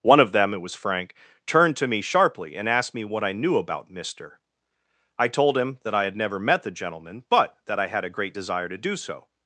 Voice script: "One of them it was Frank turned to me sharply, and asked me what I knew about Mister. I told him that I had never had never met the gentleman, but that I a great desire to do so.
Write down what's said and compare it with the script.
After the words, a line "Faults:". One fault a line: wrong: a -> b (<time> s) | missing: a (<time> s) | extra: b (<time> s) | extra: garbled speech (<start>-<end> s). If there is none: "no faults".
"One of them it was Frank turned to me sharply, and asked me what I knew about Mister. I told him that I had never met the gentleman, but that I had a great desire to do so.
Faults:
missing: had never (6.4 s)
extra: had (7.9 s)